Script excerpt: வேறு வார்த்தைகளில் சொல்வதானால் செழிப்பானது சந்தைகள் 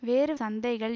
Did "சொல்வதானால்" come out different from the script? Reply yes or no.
yes